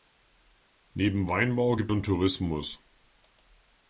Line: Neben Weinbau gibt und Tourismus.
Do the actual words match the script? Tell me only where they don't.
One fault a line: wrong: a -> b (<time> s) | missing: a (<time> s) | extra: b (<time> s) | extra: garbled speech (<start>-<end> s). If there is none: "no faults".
no faults